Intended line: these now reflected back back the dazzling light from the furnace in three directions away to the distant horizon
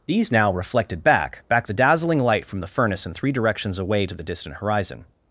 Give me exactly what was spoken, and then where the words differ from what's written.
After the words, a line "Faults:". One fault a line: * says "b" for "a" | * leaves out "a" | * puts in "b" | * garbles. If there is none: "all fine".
these now reflected back back the dazzling light from the furnace in three directions away to the distant horizon
Faults:
all fine